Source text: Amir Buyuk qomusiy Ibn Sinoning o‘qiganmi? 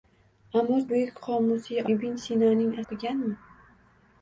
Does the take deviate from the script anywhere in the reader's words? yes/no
no